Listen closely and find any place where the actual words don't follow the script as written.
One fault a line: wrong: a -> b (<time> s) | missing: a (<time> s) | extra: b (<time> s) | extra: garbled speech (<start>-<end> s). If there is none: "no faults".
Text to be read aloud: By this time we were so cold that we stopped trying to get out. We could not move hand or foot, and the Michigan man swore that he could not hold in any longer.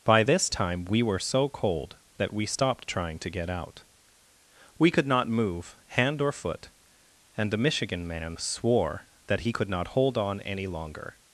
wrong: in -> on (10.2 s)